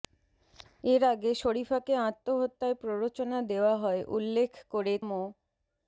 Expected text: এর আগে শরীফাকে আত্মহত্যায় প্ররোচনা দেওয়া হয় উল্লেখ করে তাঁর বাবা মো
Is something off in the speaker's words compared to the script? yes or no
yes